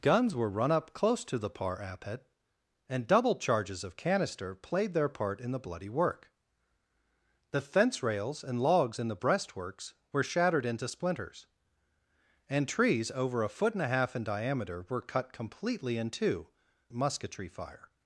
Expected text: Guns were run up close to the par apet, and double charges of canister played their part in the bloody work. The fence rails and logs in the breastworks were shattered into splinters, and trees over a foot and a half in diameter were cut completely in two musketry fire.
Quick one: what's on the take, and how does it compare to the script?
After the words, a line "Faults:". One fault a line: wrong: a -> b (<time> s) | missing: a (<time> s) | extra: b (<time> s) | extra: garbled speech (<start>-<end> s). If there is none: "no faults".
Guns were run up close to the par apet, and double charges of canister played their part in the bloody work. The fence rails and logs in the breastworks were shattered into splinters, and trees over a foot and a half in diameter were cut completely in two musketry fire.
Faults:
no faults